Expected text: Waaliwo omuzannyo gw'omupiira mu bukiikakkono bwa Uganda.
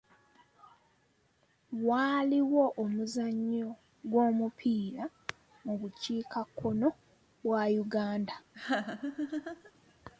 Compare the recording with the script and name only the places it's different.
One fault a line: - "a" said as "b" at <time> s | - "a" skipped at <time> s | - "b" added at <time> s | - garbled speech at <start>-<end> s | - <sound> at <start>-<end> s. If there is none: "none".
- laugh at 8.5-9.7 s